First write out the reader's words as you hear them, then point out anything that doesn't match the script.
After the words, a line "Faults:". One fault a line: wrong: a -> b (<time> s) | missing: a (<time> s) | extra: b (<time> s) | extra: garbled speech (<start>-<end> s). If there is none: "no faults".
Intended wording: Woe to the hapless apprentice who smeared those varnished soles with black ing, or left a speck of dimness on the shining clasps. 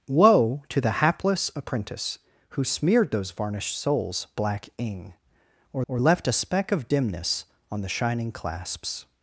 Woe to the hapless apprentice who smeared those varnished soles black ing, or or left a speck of dimness on the shining clasps.
Faults:
missing: with (4.3 s)
extra: or (5.9 s)